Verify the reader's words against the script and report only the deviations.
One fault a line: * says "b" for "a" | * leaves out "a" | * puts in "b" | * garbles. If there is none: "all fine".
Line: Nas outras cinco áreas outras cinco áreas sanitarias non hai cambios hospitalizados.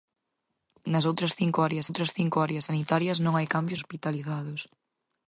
all fine